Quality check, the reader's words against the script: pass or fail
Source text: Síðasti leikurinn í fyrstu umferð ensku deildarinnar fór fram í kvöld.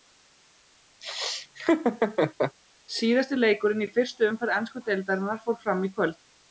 pass